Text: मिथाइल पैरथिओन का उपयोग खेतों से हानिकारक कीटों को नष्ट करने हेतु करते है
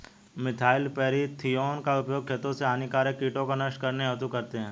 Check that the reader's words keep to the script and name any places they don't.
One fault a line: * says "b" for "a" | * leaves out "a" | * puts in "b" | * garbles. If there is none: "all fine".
all fine